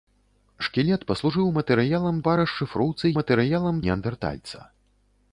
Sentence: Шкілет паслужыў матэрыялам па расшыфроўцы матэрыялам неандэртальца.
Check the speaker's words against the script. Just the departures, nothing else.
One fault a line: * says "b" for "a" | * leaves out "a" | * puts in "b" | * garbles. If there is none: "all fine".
all fine